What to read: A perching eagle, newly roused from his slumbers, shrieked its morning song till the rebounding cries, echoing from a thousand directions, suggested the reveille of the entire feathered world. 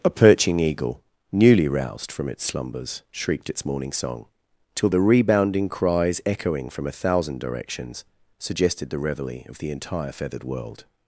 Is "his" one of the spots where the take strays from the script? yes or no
yes